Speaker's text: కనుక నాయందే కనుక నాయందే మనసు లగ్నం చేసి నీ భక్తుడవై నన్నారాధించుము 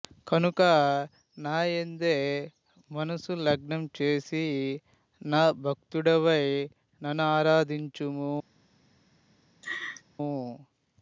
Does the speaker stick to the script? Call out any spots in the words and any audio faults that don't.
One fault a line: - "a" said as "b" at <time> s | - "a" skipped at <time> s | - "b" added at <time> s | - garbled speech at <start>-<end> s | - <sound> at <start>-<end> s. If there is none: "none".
- "కనుక నాయందే" skipped at 2.1 s
- "నీ" said as "నా" at 5.2 s
- laugh at 9.6-10.0 s